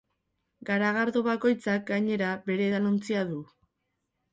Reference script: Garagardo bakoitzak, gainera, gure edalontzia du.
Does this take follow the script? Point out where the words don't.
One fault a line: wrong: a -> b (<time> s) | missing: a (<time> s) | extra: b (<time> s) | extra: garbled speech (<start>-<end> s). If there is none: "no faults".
wrong: gure -> bere (2.5 s)